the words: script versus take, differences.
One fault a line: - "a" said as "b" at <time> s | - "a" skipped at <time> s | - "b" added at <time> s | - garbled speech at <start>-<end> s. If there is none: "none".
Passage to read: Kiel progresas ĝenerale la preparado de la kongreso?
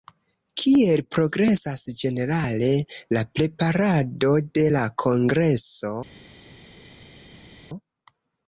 none